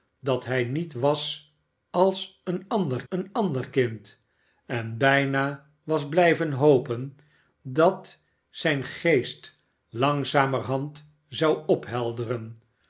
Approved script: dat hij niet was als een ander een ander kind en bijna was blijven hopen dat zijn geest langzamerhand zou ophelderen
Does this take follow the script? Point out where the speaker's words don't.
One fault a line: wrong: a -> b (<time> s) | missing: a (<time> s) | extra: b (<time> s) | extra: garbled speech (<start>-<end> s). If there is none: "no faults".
no faults